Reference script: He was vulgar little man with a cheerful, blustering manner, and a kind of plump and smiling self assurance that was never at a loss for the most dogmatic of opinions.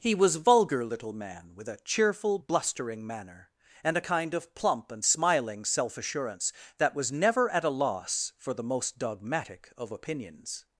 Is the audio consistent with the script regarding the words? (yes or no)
yes